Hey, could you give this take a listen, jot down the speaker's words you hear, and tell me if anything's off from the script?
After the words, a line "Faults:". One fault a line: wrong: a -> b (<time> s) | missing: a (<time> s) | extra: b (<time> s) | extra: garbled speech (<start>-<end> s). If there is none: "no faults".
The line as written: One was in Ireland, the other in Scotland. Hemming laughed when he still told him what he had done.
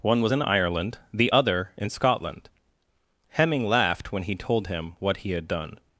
One was in Ireland, the other in Scotland. Hemming laughed when he told him what he had done.
Faults:
missing: still (4.4 s)